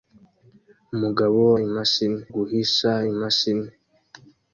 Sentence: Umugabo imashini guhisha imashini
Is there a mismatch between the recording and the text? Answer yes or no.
no